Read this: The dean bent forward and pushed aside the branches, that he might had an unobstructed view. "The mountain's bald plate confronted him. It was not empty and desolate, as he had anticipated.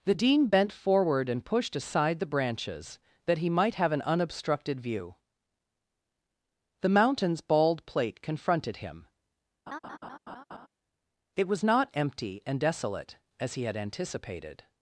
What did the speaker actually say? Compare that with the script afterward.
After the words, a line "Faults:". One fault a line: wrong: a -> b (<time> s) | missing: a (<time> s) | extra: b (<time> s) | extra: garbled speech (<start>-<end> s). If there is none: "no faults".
The dean bent forward and pushed aside the branches, that he might have an unobstructed view. "The mountain's bald plate confronted him. It was not empty and desolate, as he had anticipated.
Faults:
wrong: had -> have (3.7 s)